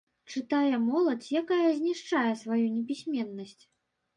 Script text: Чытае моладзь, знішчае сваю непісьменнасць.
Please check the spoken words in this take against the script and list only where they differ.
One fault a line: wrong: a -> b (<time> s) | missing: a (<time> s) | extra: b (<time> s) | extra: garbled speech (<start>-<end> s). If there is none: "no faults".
extra: якая (1.4 s)